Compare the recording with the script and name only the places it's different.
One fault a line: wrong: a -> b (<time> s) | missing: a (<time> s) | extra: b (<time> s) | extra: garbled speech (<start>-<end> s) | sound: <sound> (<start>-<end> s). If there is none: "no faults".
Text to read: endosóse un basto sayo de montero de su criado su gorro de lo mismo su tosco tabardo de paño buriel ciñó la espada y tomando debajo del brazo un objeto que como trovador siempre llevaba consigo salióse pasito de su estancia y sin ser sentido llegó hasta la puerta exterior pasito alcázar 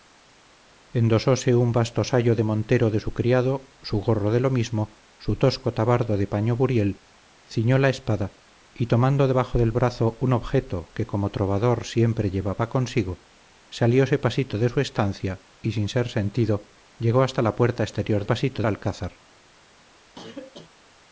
sound: cough (20.1-20.7 s)